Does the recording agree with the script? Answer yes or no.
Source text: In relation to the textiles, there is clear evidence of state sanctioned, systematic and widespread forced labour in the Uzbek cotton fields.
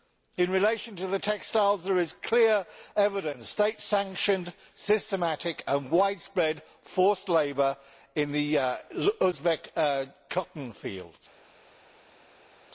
yes